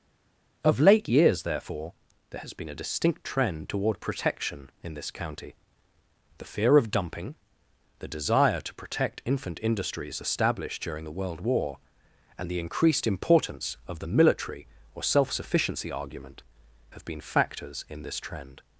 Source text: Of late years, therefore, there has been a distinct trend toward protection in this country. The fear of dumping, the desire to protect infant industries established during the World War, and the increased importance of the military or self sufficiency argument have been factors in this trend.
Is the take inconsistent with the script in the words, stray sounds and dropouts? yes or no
yes